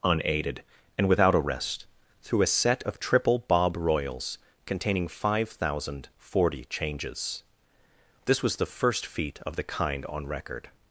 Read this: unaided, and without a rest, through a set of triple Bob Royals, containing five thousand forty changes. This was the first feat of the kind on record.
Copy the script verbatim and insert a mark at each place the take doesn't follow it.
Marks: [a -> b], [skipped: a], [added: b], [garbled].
unaided, and without a rest, through a set of triple Bob Royals, containing five thousand forty changes. This was the first feat of the kind on record.